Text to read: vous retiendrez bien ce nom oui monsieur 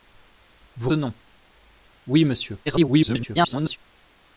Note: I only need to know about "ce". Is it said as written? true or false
false